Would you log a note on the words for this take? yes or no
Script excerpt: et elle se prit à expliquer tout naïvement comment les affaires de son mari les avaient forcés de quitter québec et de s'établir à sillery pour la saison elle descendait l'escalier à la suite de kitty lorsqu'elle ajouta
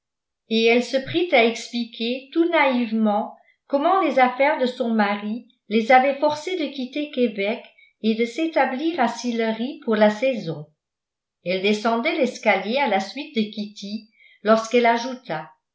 no